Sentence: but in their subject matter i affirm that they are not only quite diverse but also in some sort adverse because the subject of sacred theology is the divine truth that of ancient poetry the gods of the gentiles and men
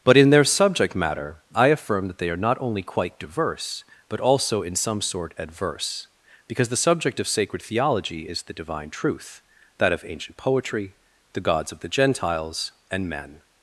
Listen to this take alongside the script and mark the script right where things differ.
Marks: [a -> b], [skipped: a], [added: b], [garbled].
but in their subject matter i affirm that they are not only quite diverse but also in some sort adverse because the subject of sacred theology is the divine truth that of ancient poetry the gods of the gentiles and men